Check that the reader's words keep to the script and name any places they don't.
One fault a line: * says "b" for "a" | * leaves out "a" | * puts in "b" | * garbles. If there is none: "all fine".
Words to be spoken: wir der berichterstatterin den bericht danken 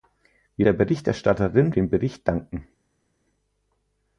all fine